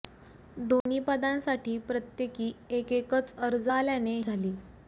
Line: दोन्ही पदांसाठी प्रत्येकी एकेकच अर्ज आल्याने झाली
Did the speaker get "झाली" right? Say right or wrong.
right